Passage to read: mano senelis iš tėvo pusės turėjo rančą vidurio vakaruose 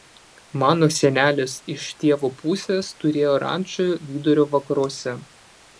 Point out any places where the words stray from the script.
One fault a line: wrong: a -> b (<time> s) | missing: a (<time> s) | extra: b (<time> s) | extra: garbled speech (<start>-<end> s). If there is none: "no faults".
no faults